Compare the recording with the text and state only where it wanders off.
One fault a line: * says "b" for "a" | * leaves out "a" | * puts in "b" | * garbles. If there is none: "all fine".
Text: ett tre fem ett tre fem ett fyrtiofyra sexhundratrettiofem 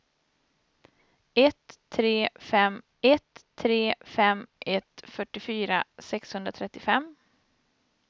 all fine